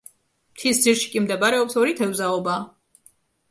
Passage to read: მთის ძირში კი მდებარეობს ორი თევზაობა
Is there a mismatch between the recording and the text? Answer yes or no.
no